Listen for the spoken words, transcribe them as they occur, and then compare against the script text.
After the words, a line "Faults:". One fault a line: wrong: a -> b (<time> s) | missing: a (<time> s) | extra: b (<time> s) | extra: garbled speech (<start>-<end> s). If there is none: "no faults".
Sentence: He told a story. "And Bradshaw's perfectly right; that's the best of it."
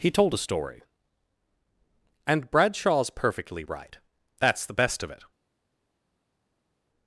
He told a story. "And Bradshaw's perfectly right; that's the best of it."
Faults:
no faults